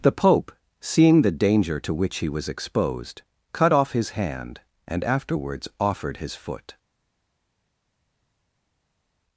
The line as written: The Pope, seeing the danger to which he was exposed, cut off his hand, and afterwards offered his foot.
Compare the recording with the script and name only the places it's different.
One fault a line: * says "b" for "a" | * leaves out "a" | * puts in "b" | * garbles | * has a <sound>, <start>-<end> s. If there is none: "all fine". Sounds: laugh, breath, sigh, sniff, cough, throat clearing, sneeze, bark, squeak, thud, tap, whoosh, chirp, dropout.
all fine